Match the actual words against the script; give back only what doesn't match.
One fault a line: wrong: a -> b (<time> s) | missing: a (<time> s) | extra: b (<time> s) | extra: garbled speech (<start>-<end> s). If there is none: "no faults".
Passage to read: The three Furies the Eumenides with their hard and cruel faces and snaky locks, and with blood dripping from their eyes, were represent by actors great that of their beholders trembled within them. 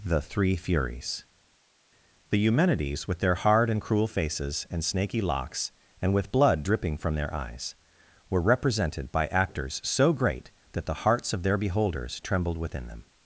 wrong: represent -> represented (8.4 s)
extra: so (9.8 s)
extra: the hearts (10.9 s)